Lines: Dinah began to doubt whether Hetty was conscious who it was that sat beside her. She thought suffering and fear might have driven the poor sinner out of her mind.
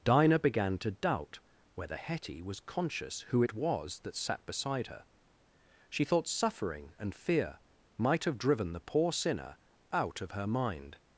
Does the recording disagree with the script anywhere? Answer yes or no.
no